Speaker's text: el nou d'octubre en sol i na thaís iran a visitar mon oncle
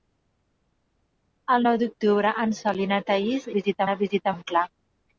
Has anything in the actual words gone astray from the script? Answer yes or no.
yes